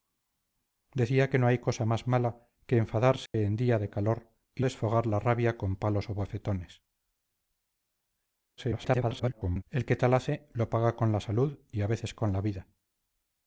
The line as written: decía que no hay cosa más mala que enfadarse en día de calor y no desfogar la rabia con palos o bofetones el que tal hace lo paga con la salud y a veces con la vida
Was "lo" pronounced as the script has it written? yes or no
yes